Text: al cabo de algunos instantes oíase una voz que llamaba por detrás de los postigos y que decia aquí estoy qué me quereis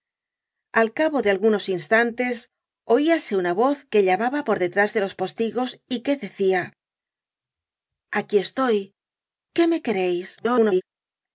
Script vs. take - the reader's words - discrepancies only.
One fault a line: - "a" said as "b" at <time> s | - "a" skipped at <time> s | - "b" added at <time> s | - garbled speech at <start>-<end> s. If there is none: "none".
- garbled speech at 10.4-10.8 s